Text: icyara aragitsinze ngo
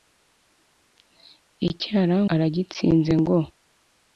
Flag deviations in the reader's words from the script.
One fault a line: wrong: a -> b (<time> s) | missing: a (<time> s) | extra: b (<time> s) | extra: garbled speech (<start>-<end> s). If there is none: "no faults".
no faults